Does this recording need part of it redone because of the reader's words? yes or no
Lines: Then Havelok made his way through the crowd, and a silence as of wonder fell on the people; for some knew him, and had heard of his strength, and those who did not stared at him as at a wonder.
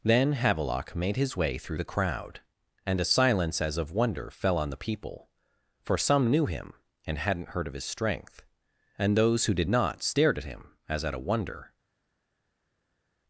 yes